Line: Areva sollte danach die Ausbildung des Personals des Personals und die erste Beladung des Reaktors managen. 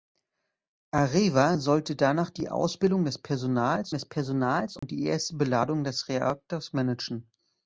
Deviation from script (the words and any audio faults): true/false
true